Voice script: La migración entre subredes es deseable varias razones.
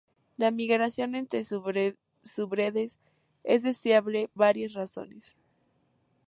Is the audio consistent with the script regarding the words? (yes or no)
yes